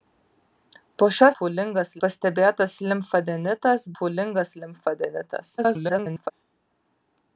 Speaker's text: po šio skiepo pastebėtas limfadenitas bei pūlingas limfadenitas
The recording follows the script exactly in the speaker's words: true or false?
false